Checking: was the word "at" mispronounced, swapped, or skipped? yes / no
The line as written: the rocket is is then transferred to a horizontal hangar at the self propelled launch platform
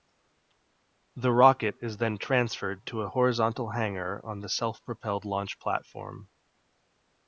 yes